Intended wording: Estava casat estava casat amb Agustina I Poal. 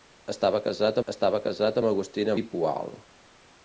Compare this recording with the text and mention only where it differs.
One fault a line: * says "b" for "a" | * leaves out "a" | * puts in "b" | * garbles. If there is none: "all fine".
all fine